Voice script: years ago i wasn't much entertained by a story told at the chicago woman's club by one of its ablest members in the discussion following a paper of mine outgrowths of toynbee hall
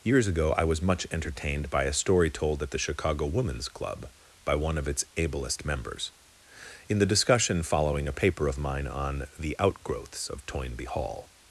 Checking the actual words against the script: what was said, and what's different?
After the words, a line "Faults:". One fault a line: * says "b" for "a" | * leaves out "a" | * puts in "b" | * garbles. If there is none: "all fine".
years ago i was much entertained by a story told at the chicago woman's club by one of its ablest members in the discussion following a paper of mine on the outgrowths of toynbee hall
Faults:
* says "was" for "wasn't"
* puts in "on the"